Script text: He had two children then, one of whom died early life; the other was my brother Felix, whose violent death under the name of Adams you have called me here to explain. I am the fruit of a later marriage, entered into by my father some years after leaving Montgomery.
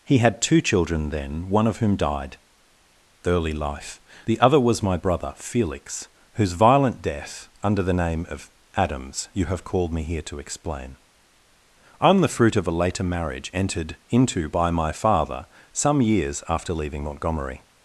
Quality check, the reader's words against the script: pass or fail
pass